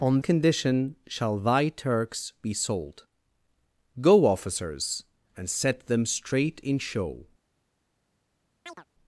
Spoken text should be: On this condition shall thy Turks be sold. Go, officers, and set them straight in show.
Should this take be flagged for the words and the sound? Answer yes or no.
yes